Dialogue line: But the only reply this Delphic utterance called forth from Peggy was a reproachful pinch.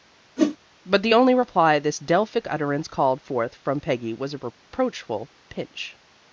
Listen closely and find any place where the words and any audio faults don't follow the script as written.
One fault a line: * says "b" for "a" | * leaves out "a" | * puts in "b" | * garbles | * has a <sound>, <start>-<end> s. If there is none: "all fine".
* has a whoosh, 0.4-0.6 s